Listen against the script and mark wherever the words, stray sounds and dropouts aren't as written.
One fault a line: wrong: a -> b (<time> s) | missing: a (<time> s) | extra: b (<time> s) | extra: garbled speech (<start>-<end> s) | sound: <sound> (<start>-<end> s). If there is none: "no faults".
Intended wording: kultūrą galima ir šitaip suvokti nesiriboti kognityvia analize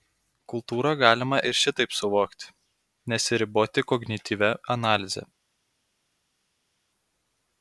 no faults